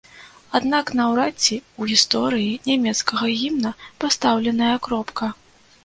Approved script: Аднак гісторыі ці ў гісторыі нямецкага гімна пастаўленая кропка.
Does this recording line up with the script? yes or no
no